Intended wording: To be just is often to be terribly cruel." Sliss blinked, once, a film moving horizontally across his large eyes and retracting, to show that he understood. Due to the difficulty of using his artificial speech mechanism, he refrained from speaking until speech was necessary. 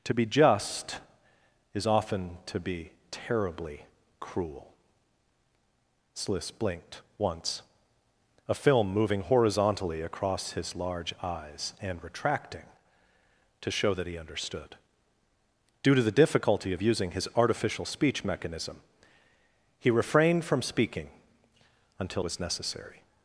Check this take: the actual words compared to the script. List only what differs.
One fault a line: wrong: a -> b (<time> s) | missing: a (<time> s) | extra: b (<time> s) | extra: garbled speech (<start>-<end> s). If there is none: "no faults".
missing: speech (22.2 s)